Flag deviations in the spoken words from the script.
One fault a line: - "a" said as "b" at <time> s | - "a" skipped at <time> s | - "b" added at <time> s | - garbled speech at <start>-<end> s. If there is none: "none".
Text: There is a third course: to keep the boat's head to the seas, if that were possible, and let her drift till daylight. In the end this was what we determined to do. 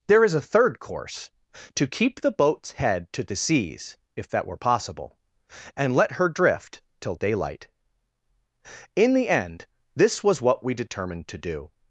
none